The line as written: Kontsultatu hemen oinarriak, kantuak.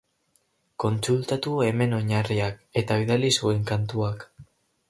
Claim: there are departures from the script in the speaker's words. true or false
true